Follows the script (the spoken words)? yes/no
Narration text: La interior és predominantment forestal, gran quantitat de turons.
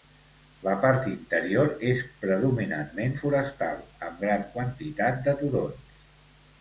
no